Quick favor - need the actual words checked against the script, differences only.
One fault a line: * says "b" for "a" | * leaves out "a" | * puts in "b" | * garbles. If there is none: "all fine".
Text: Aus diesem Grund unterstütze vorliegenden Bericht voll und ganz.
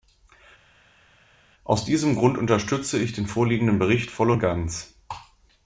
* puts in "ich den"